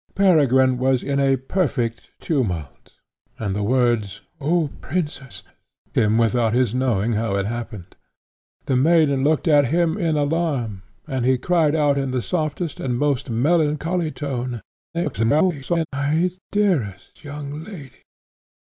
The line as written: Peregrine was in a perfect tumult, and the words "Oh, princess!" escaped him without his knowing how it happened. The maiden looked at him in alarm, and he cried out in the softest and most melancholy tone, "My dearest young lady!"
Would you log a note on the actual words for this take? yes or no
yes